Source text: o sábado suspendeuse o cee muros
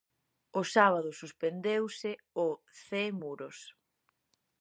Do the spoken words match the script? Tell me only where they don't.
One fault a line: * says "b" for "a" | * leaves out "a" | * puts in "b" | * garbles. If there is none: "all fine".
all fine